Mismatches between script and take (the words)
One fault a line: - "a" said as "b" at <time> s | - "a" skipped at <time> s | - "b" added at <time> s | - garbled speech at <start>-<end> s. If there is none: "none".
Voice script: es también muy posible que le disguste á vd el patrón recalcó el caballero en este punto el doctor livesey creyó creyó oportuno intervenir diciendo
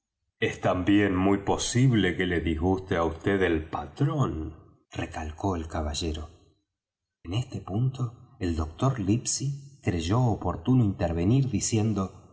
- "creyó" skipped at 10.2 s